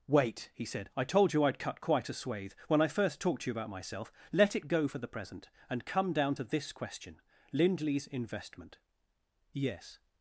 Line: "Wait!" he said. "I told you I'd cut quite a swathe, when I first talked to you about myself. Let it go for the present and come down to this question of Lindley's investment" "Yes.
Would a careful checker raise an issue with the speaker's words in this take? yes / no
yes